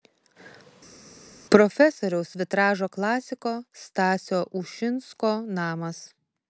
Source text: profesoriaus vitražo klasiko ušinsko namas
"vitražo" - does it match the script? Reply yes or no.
yes